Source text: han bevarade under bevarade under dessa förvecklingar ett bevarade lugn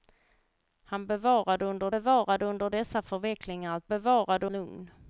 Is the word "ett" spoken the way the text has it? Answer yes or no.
yes